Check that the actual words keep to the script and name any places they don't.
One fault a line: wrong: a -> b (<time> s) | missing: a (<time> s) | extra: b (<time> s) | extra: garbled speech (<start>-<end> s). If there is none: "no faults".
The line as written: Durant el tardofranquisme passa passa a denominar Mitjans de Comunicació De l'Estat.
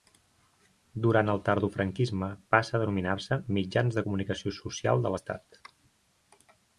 missing: passa (2.8 s)
extra: se (3.3 s)
extra: Social (4.6 s)